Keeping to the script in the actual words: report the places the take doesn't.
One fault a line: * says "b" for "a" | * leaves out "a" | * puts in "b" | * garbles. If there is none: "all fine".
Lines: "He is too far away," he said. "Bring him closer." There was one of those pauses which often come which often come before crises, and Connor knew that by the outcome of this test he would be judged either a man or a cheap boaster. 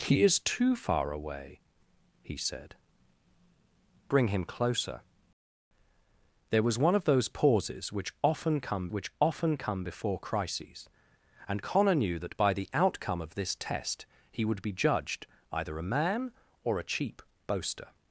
all fine